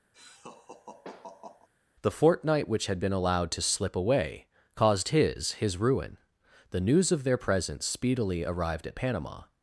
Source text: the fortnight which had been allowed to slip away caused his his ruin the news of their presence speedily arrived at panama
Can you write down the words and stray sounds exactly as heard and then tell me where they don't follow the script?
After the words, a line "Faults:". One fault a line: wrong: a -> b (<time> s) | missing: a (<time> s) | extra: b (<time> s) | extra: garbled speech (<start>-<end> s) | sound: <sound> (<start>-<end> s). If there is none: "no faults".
the fortnight which had been allowed to slip away caused his his ruin the news of their presence speedily arrived at panama
Faults:
sound: laugh (0.1-1.7 s)